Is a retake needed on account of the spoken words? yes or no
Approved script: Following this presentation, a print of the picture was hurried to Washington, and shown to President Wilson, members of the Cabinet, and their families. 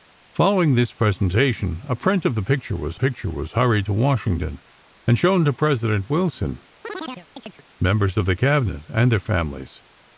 yes